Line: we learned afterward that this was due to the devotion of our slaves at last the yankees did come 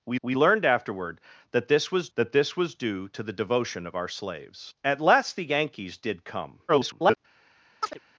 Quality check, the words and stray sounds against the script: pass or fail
fail